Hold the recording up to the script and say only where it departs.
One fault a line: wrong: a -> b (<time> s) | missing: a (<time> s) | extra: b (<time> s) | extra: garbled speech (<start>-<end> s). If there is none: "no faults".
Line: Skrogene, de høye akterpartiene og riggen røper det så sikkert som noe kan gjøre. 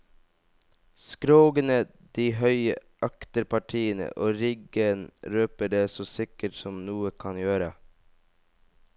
no faults